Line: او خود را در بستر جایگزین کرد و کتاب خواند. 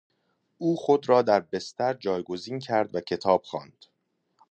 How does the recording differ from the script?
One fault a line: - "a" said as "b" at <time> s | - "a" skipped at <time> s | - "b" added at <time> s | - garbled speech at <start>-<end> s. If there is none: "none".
none